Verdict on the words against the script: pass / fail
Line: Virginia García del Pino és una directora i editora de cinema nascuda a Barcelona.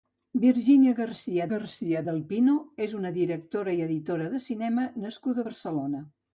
fail